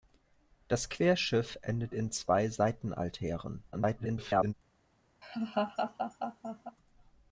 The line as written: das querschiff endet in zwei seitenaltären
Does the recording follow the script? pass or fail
fail